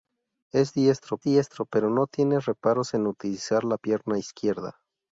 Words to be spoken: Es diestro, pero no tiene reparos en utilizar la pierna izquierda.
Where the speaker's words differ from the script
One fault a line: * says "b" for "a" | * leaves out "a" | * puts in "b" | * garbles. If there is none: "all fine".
* puts in "diestro"